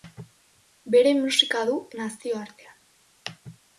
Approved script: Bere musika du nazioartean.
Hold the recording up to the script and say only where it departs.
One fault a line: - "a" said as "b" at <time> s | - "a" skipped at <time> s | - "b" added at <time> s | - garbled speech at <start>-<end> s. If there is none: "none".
none